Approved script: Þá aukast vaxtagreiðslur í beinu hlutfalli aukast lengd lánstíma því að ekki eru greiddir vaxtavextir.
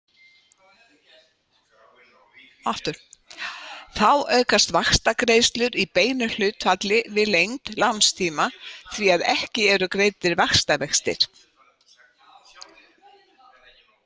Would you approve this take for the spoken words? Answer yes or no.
no